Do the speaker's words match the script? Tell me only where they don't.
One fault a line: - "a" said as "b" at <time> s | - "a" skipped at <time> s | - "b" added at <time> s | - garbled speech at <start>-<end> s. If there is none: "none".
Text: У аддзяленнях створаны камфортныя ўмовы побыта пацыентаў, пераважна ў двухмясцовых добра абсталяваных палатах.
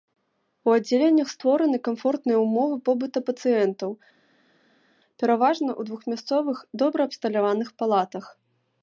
none